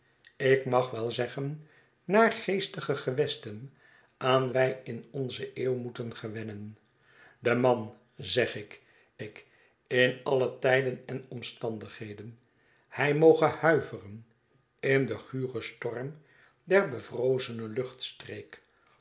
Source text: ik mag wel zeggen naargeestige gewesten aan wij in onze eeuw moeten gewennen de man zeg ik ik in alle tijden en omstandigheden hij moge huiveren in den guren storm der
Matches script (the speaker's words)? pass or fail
pass